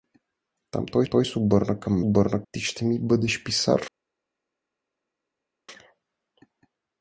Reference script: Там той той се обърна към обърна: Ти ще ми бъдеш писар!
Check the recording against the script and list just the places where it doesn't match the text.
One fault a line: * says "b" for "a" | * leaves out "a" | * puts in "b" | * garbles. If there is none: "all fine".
all fine